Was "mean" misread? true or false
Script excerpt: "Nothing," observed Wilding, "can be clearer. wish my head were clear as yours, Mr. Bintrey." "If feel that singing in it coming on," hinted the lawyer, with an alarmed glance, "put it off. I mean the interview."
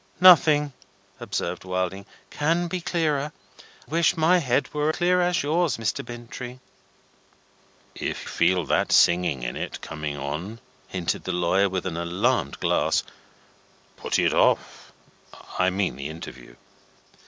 false